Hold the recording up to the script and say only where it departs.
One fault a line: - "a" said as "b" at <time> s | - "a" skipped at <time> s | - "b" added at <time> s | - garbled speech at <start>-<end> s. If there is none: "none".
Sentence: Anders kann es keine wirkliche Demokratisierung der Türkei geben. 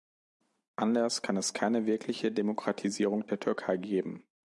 none